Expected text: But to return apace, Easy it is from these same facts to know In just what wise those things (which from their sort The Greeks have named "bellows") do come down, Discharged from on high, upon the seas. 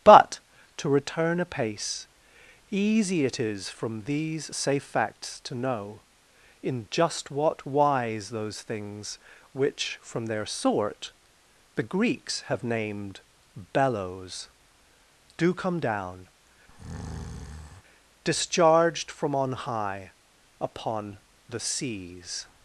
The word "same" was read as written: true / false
false